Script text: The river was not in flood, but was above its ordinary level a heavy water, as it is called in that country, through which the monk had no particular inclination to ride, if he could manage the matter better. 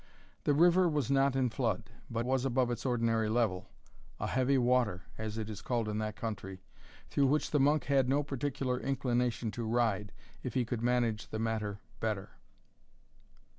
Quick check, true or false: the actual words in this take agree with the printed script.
true